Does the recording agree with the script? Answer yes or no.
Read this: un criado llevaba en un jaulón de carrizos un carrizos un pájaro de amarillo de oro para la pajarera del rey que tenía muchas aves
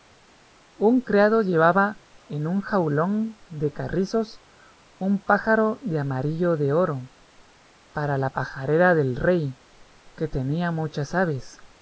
no